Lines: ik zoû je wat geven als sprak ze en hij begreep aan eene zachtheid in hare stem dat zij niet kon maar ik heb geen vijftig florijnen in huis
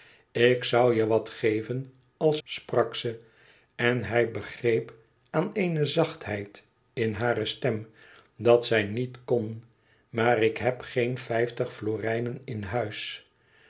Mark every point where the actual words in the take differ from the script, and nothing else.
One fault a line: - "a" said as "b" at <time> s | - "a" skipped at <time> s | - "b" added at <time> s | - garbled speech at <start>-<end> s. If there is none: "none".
none